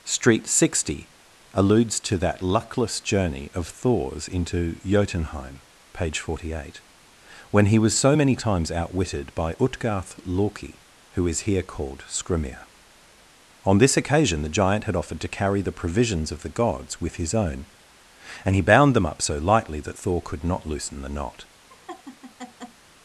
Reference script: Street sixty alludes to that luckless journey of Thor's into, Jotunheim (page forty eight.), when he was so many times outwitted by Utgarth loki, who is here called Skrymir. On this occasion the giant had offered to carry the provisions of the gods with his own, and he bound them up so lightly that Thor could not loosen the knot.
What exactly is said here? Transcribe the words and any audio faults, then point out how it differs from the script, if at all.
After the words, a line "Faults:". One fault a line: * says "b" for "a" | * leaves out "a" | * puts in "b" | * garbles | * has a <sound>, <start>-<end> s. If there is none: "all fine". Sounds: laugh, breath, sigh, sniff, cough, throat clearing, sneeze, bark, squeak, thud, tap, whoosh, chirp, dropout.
Street sixty alludes to that luckless journey of Thor's into, Jotunheim (page forty eight.), when he was so many times outwitted by Utgarth loki, who is here called Skrymir. On this occasion the giant had offered to carry the provisions of the gods with his own, and he bound them up so lightly that Thor could not loosen the knot.
Faults:
* has a laugh, 21.7-22.8 s